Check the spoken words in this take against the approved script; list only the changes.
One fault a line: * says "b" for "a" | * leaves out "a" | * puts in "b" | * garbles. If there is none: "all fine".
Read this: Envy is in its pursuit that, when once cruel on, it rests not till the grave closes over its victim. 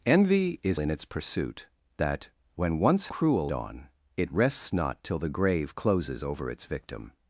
all fine